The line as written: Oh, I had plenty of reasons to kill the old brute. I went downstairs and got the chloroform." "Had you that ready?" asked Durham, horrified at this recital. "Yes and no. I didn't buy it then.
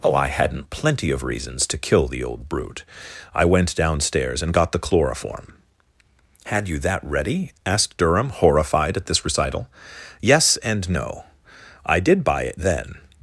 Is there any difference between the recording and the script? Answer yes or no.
yes